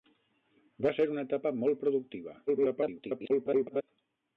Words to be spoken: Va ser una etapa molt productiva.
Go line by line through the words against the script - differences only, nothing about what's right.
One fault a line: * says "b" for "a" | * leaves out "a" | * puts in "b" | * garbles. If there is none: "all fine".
* garbles